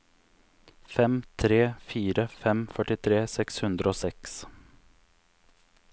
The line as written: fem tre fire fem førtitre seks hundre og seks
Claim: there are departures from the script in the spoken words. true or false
false